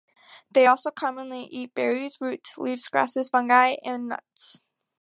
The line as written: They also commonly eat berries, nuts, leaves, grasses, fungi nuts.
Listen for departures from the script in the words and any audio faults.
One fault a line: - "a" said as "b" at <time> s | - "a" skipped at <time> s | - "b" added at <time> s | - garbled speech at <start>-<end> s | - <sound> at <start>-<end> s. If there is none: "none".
- "nuts" said as "roots" at 2.2 s
- "and" added at 3.8 s